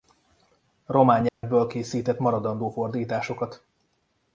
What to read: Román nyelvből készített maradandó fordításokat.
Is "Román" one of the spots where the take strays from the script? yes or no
no